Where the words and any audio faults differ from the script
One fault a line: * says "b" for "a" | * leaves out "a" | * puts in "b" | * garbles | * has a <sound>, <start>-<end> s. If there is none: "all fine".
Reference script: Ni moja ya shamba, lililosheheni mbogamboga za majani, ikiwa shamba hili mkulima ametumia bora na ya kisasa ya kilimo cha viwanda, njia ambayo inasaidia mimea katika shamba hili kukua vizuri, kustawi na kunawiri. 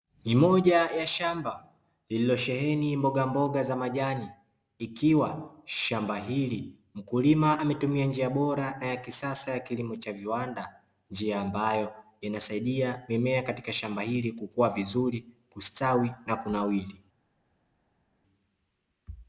* puts in "njia"